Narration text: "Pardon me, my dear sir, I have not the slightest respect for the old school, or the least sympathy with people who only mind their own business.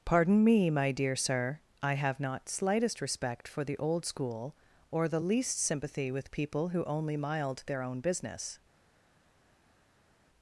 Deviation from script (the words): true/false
true